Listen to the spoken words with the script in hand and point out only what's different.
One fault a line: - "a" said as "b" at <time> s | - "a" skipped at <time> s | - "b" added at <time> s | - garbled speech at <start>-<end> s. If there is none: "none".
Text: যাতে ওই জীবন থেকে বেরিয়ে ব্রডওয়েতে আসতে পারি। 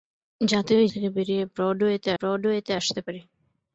- "জীবন" skipped at 0.9 s
- "ব্রডওয়েতে" added at 2.2 s